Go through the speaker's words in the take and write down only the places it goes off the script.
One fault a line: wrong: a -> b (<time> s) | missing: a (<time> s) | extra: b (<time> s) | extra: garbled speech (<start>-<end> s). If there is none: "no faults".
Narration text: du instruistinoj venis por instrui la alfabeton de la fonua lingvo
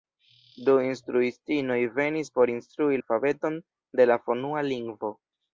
missing: la (3.0 s)